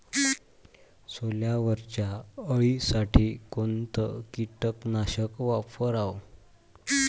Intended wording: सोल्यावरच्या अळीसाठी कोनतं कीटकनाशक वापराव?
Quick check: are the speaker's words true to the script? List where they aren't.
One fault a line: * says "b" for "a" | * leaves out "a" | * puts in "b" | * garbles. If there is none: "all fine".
all fine